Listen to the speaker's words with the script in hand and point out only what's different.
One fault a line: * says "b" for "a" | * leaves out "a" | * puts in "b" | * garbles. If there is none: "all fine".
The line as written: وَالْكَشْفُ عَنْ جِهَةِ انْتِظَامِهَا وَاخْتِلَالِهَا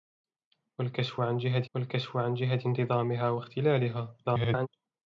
* puts in "وَالْكَشْفُ عَنْ جِهَةِ"
* garbles